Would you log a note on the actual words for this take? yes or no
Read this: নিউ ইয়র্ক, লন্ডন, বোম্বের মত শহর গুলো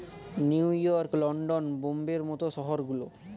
no